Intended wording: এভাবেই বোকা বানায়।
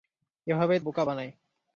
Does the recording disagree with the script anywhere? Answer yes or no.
no